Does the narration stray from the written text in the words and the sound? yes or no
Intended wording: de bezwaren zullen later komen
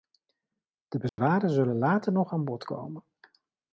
yes